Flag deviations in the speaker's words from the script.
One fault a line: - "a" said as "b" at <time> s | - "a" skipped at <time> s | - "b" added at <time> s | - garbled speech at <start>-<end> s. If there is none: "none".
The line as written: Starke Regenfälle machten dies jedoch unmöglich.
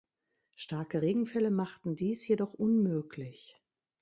none